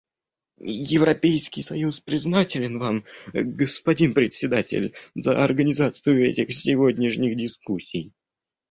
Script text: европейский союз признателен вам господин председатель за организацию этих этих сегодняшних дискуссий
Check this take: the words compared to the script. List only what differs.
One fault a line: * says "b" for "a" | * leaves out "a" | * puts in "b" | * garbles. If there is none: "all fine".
* leaves out "этих"